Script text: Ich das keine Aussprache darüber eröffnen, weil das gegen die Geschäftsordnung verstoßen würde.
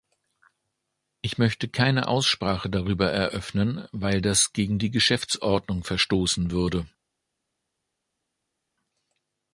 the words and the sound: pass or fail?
fail